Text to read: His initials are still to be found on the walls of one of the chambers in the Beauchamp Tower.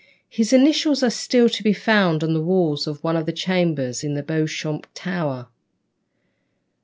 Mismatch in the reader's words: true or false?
false